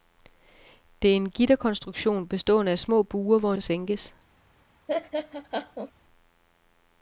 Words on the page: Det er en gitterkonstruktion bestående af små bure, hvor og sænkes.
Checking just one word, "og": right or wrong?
right